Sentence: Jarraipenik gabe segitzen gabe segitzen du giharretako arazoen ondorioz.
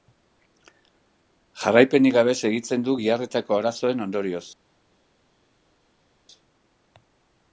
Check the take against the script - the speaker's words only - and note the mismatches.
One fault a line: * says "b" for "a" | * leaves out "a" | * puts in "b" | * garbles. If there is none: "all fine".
* leaves out "gabe segitzen"